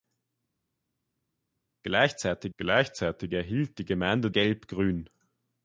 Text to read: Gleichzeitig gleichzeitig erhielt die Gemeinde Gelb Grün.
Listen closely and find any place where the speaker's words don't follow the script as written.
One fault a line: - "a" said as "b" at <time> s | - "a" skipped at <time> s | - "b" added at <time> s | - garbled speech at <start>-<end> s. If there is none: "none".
none